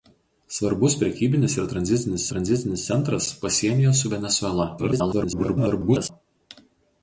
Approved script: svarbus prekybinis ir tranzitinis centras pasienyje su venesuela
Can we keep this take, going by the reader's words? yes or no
no